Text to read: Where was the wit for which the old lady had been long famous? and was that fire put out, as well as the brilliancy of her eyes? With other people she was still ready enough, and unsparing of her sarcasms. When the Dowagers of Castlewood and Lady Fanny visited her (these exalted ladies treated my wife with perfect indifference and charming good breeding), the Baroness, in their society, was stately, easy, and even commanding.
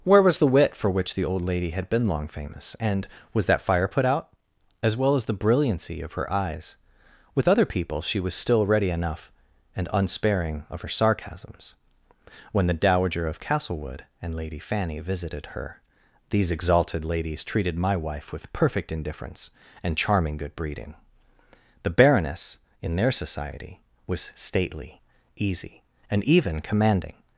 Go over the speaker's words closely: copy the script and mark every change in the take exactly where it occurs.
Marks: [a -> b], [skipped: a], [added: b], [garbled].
Where was the wit for which the old lady had been long famous? and was that fire put out, as well as the brilliancy of her eyes? With other people she was still ready enough, and unsparing of her sarcasms. When the [Dowagers -> Dowager] of Castlewood and Lady Fanny visited her (these exalted ladies treated my wife with perfect indifference and charming good breeding), the Baroness, in their society, was stately, easy, and even commanding.